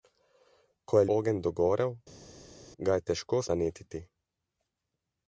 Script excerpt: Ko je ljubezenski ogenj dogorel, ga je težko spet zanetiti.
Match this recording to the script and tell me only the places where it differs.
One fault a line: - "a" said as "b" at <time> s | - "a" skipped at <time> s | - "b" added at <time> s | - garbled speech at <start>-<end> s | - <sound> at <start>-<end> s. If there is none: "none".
- "ljubezenski" skipped at 1.1 s
- "spet" skipped at 3.4 s